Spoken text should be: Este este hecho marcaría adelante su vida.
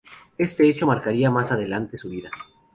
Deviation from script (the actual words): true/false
true